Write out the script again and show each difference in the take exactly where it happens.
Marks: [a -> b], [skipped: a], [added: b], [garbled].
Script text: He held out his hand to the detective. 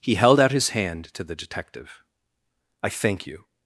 He held out his hand to the detective. [added: I thank you]